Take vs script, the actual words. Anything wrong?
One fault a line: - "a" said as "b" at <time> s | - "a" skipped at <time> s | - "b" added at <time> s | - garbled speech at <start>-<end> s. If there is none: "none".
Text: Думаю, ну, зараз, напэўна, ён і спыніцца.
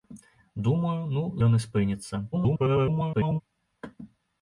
- "зараз напэўна" skipped at 1.2 s
- garbled speech at 2.3-3.4 s